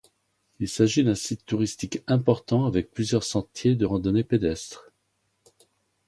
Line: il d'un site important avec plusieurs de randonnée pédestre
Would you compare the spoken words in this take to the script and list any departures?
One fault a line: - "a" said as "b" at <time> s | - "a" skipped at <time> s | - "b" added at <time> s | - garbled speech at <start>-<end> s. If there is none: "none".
- "s'agit" added at 0.7 s
- "touristique" added at 1.4 s
- "sentiers" added at 3.2 s